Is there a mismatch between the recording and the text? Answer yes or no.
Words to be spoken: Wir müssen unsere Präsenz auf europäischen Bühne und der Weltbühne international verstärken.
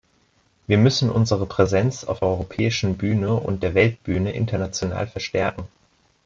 no